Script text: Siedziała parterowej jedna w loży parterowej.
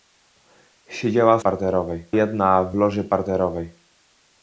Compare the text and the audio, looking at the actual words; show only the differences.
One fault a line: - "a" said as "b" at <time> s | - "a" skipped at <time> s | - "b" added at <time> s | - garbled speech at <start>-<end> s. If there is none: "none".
none